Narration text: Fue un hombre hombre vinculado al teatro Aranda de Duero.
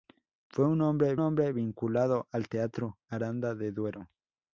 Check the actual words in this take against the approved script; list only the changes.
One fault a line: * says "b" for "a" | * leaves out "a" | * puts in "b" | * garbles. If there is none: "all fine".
all fine